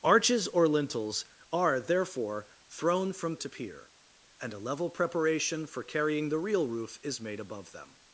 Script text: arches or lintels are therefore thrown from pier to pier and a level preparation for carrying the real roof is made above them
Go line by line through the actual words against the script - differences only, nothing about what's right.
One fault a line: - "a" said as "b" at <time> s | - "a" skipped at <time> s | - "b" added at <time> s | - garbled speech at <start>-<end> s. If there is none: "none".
- "pier" skipped at 3.4 s